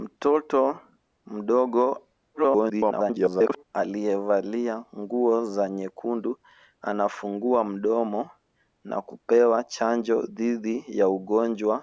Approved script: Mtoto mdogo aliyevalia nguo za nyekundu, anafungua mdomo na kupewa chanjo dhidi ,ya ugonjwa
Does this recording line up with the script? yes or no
no